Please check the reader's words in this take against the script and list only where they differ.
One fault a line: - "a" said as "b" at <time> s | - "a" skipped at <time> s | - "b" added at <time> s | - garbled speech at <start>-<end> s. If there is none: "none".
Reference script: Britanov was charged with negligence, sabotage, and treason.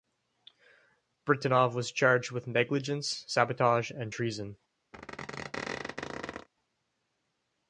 none